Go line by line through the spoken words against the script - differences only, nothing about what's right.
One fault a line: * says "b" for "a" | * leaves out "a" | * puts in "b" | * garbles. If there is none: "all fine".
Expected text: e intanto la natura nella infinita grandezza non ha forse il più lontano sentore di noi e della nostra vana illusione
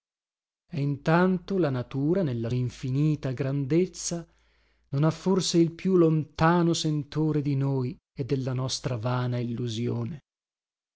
all fine